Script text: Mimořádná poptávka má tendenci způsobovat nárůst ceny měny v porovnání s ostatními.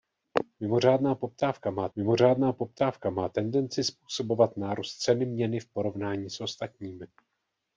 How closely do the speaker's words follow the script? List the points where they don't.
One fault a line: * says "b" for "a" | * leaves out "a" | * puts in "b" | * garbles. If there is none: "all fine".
* puts in "mimořádná poptávka má"